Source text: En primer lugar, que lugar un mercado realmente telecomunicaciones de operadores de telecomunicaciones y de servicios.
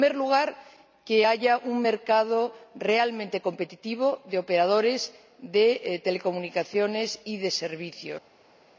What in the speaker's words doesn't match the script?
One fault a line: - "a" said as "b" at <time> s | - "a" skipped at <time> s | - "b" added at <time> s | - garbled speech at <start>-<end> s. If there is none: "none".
- "lugar" said as "haya" at 1.3 s
- "telecomunicaciones" said as "competitivo" at 3.4 s